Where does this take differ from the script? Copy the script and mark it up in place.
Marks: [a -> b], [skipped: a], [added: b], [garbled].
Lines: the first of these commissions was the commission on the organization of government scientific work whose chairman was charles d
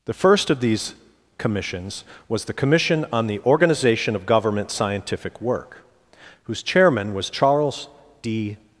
the first of these commissions was the commission on the organization of government scientific work whose chairman was charles d